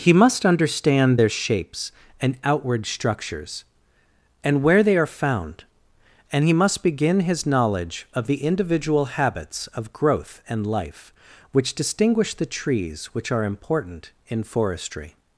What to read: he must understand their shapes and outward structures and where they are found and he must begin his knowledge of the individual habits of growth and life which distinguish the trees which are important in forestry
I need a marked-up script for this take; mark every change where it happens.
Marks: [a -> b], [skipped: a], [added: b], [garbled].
he must understand their shapes and outward structures and where they are found and he must begin his knowledge of the individual habits of growth and life which distinguish the trees which are important in forestry